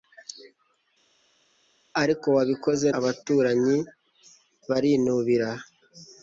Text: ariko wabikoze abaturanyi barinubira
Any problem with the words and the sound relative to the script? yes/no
no